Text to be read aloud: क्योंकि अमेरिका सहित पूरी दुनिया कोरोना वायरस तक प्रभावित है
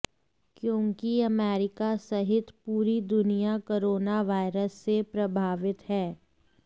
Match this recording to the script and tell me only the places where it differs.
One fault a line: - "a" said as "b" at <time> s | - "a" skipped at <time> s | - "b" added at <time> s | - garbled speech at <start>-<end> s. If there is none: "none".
- "तक" said as "से" at 4.8 s